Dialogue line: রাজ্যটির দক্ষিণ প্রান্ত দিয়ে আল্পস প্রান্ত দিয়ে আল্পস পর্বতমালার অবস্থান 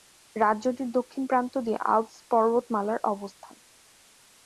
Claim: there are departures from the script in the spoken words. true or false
true